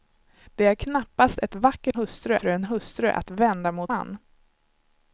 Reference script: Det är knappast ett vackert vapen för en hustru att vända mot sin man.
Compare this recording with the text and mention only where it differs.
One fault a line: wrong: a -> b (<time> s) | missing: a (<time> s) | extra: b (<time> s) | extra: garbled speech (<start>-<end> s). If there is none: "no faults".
wrong: vapen -> hustru (1.9 s)
missing: sin (3.9 s)